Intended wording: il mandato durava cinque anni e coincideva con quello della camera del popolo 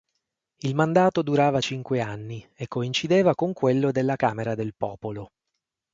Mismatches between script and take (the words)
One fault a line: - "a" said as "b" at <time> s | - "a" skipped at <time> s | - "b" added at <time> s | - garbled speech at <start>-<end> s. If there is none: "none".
none